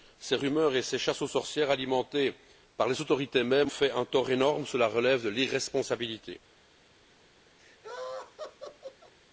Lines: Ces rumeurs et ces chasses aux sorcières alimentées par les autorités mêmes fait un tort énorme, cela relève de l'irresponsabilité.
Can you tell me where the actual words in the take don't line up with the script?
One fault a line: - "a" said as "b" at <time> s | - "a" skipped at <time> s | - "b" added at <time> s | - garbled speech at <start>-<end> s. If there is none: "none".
none